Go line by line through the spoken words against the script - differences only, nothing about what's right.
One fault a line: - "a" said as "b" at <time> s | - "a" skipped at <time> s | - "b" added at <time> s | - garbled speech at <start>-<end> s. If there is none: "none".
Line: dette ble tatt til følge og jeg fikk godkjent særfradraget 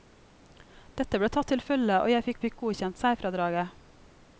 - "fikk" added at 2.5 s